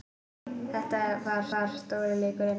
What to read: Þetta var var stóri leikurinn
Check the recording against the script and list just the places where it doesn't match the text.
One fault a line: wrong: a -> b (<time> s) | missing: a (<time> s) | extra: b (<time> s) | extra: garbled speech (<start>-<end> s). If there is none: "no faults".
no faults